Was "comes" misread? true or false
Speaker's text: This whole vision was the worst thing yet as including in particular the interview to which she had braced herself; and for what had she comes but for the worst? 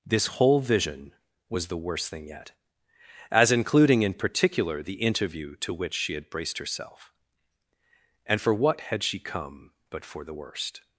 true